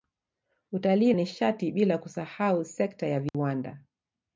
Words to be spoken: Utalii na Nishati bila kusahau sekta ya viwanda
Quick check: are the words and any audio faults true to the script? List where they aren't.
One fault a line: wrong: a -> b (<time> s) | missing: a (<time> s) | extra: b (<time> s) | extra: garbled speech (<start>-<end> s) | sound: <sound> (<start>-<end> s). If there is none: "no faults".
missing: na (1.1 s)
sound: dropout (3.3-3.3 s)